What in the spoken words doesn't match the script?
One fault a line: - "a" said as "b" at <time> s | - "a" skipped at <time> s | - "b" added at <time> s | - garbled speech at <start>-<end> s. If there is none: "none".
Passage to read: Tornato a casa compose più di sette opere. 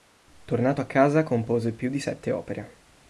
none